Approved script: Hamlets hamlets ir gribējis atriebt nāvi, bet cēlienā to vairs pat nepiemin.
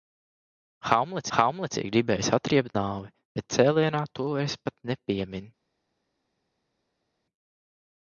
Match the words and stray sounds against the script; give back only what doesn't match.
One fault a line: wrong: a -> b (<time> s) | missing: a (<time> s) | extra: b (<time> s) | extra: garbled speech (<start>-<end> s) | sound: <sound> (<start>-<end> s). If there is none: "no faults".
no faults